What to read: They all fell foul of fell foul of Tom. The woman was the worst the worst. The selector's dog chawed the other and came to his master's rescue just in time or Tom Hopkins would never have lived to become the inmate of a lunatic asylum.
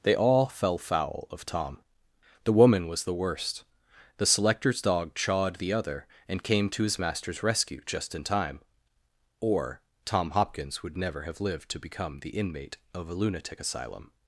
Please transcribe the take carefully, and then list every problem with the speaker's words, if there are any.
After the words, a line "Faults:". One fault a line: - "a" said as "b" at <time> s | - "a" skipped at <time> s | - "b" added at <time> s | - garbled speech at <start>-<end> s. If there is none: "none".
They all fell foul of Tom. The woman was the worst. The selector's dog chawed the other and came to his master's rescue just in time or Tom Hopkins would never have lived to become the inmate of a lunatic asylum.
Faults:
- "fell foul of" skipped at 1.4 s
- "worst The" skipped at 4.2 s